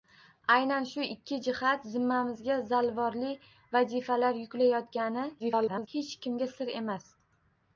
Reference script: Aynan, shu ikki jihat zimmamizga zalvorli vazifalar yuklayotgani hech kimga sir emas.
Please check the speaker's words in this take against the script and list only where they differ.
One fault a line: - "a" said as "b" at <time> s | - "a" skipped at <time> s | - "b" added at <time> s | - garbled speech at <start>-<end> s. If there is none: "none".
- garbled speech at 5.4-5.9 s